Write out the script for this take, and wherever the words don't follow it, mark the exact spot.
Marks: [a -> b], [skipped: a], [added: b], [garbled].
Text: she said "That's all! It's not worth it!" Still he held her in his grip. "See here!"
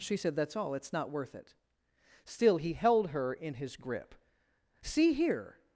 she said "That's all! It's not worth it!" Still he held her in his grip. "See here!"